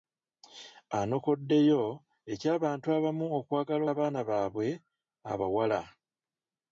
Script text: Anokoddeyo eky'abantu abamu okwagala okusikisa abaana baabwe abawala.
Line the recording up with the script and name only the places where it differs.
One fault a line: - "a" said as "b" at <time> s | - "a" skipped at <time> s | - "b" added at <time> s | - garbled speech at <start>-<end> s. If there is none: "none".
- "okusikisa" skipped at 3.8 s